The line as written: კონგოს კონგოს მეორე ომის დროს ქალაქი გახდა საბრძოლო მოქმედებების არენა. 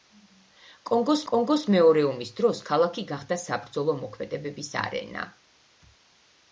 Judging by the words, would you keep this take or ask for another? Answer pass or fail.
pass